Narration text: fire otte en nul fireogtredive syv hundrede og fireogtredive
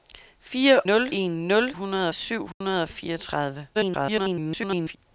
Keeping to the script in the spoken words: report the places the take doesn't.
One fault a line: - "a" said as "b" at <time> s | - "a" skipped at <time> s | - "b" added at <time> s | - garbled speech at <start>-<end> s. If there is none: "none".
- "otte" said as "nul" at 0.9 s
- "fireogtredive" said as "hundrede" at 1.7 s
- garbled speech at 3.7-5.0 s